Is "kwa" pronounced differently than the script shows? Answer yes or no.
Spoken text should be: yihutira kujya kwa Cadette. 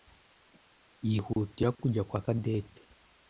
no